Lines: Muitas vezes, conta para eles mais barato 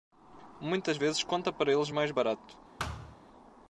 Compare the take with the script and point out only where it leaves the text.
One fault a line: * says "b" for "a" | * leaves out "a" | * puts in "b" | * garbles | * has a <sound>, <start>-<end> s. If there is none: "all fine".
* has a thud, 2.8-3.2 s